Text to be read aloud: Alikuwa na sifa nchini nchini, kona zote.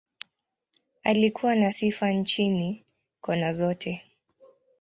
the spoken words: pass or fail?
fail